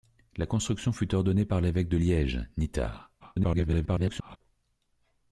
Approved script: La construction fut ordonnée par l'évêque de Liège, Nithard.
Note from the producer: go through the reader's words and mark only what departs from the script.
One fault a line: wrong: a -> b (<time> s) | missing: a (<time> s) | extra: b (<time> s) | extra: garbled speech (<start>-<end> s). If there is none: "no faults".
extra: garbled speech (3.2-4.4 s)